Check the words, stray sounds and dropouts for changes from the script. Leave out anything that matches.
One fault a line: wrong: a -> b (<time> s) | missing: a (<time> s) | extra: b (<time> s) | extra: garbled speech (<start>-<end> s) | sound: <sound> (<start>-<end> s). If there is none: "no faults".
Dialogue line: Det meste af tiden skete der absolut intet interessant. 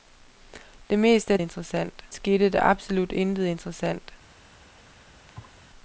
wrong: tiden -> interessant (1.4 s)
sound: thud (5.3-5.6 s)